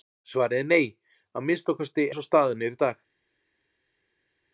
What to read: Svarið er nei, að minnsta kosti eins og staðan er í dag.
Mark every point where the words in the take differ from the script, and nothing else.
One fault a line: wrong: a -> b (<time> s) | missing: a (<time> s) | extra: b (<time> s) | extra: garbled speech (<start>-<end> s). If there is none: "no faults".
no faults